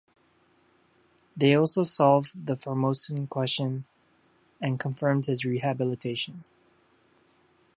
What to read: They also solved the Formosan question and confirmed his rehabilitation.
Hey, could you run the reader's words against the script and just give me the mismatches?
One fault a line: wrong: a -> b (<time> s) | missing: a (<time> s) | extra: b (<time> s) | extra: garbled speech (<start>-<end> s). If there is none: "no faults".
no faults